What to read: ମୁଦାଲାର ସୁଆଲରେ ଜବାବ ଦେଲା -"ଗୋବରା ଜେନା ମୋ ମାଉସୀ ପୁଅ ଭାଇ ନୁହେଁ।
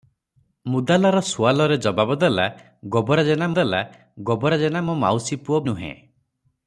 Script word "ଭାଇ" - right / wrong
wrong